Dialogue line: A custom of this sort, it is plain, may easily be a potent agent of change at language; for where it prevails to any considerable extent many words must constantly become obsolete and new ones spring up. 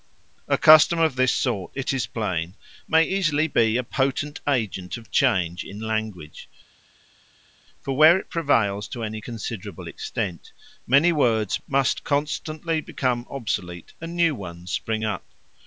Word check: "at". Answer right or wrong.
wrong